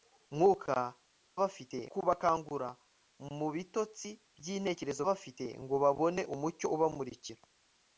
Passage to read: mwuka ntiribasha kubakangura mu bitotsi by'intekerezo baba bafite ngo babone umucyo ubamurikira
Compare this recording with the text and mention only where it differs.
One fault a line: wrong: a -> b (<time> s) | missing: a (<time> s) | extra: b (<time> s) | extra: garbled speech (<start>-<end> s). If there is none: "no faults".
wrong: ntiribasha -> bafite (1.4 s)
missing: baba (5.0 s)